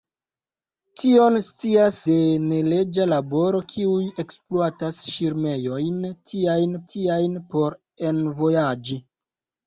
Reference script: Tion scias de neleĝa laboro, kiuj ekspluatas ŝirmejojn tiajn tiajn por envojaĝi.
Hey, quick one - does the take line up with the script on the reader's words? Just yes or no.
yes